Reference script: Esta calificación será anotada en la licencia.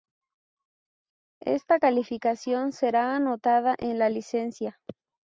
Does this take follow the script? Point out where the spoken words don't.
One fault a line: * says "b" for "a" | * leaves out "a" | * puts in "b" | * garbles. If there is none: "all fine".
all fine